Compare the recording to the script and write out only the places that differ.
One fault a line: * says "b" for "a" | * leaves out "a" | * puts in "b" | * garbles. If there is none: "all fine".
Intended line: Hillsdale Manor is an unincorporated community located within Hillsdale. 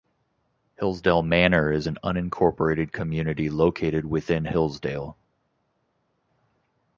all fine